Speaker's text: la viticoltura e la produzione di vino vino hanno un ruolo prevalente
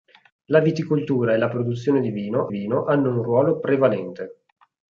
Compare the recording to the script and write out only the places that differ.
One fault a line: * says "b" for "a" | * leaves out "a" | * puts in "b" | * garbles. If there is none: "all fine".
all fine